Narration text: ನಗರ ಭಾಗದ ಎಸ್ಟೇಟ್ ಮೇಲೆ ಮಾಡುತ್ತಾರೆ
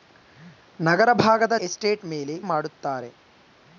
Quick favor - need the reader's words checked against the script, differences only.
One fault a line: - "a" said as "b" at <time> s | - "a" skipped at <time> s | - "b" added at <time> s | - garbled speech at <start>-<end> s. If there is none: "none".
none